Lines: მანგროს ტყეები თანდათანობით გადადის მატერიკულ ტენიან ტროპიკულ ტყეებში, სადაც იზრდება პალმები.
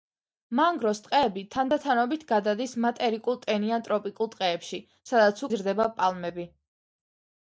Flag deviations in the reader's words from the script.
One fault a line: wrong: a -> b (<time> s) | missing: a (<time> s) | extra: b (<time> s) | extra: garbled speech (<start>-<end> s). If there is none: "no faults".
no faults